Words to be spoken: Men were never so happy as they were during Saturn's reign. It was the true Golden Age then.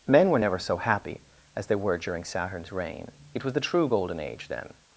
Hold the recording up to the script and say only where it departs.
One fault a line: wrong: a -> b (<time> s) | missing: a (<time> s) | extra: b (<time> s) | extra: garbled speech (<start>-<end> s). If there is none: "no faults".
no faults